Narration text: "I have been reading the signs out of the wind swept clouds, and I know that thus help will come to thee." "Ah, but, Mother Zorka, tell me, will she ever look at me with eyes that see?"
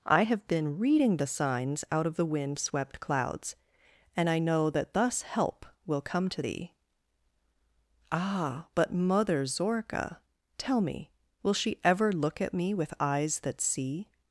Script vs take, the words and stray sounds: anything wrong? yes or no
no